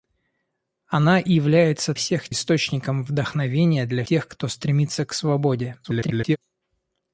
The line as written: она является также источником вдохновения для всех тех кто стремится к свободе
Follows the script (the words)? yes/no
no